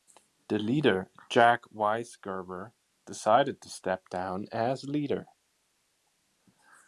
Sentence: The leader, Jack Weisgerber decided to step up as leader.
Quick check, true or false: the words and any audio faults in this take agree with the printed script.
false